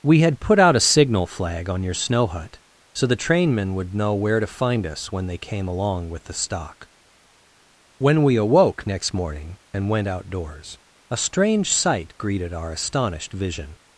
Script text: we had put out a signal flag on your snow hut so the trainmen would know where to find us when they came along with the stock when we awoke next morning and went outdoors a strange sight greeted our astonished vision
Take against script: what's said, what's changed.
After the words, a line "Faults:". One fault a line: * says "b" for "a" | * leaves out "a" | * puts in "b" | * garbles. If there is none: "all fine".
we had put out a signal flag on your snow hut so the trainmen would know where to find us when they came along with the stock when we awoke next morning and went outdoors a strange sight greeted our astonished vision
Faults:
all fine